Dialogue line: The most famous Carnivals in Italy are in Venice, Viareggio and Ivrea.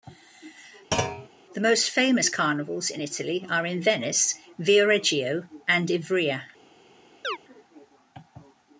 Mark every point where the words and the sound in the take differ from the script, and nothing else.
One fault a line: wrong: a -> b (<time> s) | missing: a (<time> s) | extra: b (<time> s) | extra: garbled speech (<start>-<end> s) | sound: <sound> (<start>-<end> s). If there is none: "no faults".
sound: thud (0.9-1.3 s)
sound: chirp (7.2-7.4 s)